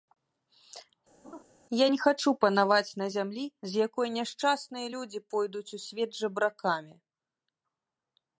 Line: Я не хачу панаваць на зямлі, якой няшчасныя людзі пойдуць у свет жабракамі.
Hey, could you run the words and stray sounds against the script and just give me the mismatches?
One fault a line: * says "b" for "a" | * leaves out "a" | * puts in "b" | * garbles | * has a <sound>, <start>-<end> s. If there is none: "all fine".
* has a laugh, 1.2-1.4 s
* puts in "з"